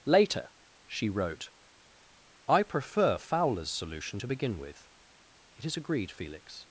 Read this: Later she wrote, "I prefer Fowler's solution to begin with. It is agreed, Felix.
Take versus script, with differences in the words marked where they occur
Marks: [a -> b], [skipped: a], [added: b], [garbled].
Later she wrote, "I prefer Fowler's solution to begin with. It is agreed, Felix.